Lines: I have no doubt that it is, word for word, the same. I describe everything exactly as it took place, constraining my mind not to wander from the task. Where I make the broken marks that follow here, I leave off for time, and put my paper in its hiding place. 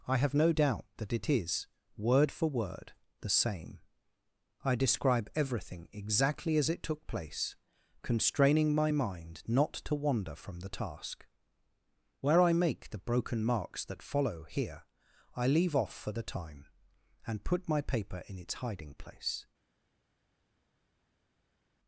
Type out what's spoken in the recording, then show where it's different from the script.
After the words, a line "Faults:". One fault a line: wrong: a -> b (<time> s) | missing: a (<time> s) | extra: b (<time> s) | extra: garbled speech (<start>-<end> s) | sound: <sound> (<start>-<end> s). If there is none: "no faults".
I have no doubt that it is, word for word, the same. I describe everything exactly as it took place, constraining my mind not to wander from the task. Where I make the broken marks that follow here, I leave off for the time, and put my paper in its hiding place.
Faults:
extra: the (16.1 s)